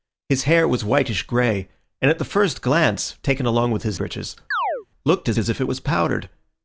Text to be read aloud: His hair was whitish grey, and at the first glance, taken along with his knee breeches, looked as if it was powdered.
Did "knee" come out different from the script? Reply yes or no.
yes